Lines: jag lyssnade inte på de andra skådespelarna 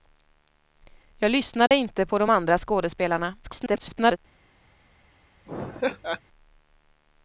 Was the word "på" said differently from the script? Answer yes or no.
no